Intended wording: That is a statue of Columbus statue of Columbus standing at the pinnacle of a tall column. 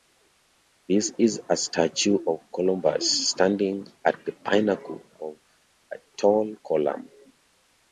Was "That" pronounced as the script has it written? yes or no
no